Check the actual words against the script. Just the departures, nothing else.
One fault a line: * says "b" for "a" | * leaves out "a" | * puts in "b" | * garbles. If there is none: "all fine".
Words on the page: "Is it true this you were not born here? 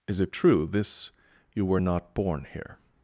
all fine